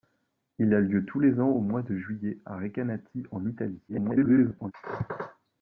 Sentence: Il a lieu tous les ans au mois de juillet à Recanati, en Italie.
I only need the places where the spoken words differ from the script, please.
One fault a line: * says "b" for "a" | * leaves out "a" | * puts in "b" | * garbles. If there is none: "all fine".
* garbles